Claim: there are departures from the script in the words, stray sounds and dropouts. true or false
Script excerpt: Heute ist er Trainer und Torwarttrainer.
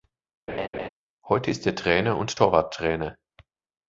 true